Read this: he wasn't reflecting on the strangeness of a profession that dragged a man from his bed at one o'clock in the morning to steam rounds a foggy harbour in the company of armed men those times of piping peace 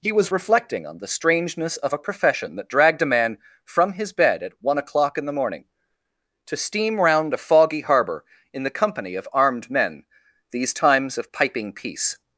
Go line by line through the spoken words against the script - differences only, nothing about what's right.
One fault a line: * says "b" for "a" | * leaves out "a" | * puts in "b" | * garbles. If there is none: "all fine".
* says "was" for "wasn't"
* says "round" for "rounds"
* says "these" for "those"